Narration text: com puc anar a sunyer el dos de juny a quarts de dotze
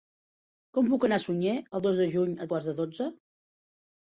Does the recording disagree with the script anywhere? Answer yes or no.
no